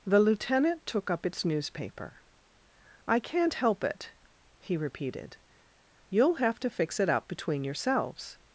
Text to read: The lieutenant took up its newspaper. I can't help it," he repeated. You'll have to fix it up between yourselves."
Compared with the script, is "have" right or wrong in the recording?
right